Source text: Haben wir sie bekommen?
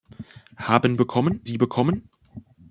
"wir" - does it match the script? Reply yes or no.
no